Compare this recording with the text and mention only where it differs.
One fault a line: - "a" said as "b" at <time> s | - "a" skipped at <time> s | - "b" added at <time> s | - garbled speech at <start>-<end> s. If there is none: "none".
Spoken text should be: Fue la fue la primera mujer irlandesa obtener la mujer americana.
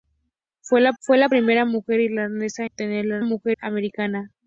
none